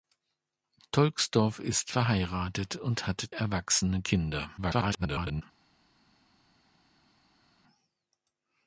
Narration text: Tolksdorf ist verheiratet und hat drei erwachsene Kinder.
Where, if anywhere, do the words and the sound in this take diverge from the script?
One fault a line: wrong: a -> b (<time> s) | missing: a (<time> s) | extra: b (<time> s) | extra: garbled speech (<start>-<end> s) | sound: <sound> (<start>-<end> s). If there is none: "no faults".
missing: drei (3.3 s)
extra: garbled speech (4.6-5.4 s)